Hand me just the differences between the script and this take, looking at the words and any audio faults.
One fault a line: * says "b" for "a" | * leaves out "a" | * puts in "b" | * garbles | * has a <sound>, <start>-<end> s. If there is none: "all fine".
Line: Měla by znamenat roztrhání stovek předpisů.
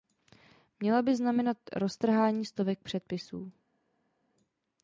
all fine